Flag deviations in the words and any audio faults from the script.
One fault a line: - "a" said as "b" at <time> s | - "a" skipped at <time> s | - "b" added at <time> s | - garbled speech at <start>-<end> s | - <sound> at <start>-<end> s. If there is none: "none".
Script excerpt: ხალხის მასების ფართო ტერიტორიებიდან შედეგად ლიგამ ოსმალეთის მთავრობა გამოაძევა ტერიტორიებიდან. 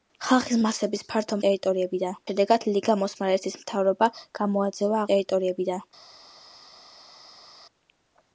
none